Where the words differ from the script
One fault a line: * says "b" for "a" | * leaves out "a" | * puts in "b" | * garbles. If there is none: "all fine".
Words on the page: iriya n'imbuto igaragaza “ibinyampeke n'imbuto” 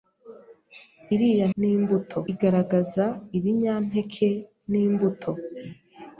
all fine